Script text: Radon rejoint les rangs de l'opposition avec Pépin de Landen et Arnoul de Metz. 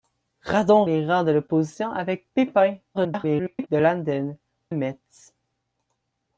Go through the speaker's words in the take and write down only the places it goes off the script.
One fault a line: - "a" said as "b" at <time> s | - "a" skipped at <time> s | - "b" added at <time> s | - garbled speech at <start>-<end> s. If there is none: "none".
- "rejoint" skipped at 0.9 s
- garbled speech at 2.9-3.7 s
- "et Arnoul de" skipped at 4.4 s